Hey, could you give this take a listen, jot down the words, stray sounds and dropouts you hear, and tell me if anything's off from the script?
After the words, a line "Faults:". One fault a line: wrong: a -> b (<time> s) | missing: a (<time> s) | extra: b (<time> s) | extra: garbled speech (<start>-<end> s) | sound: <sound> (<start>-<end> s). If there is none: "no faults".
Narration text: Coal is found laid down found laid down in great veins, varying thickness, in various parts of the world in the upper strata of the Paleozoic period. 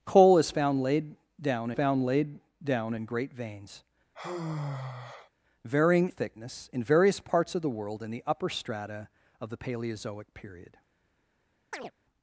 Coal is found laid down found laid down in great veins, varying thickness, in various parts of the world in the upper strata of the Paleozoic period.
Faults:
sound: sigh (4.1-5.3 s)
sound: chirp (11.7-11.9 s)